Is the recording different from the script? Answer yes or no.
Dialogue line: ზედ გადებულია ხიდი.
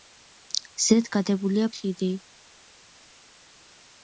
no